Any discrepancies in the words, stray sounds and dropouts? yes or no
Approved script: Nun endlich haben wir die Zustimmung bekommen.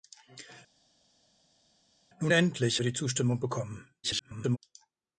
yes